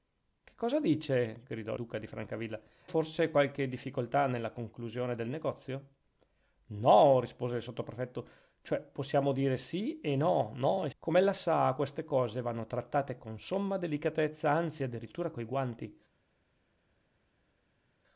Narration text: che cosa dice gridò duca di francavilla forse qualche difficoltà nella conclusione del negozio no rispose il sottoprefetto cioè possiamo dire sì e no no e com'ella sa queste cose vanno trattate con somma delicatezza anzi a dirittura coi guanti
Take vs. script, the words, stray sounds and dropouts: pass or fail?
pass